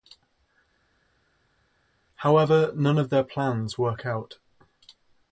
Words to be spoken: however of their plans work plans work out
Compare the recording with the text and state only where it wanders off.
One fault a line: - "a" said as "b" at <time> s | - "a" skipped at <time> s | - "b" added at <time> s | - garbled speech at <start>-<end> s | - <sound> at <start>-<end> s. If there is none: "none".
- "none" added at 2.7 s
- "plans work" skipped at 4.0 s